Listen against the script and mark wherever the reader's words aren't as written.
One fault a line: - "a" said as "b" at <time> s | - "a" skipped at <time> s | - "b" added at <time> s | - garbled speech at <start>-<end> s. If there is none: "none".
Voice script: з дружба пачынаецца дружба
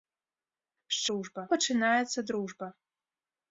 none